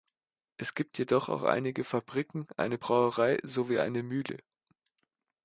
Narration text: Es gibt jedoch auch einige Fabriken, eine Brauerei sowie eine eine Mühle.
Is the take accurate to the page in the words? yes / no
no